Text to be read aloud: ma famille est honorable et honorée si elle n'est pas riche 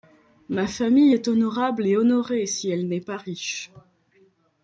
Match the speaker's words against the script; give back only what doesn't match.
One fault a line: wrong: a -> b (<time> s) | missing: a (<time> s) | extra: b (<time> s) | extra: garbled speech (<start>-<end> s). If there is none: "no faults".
no faults